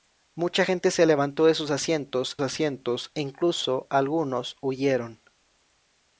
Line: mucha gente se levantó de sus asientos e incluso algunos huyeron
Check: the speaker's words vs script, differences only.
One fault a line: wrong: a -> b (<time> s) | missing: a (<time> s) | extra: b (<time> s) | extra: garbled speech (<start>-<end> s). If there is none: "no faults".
extra: asientos (2.4 s)